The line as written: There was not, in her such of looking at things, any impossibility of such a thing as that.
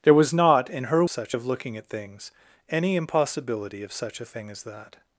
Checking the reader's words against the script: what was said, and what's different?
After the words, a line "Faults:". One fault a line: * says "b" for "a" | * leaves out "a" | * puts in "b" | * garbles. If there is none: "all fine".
There was not, in her such of looking at things, any impossibility of such a thing as that.
Faults:
all fine